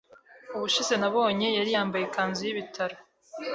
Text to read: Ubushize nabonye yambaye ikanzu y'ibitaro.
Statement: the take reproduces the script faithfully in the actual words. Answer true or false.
false